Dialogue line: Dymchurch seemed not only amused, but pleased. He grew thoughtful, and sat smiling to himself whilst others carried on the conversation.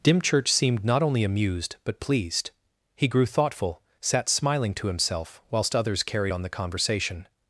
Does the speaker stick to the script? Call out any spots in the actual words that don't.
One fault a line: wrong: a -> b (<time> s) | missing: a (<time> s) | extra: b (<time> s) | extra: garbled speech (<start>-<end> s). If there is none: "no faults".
missing: and (3.8 s)